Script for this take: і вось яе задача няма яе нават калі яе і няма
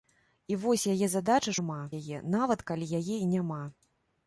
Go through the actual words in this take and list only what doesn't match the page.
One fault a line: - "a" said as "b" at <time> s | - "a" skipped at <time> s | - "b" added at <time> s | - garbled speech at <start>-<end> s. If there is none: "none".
none